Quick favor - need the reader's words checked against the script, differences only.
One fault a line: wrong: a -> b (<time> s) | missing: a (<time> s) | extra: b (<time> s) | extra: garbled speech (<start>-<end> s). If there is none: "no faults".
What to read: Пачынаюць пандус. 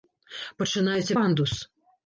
no faults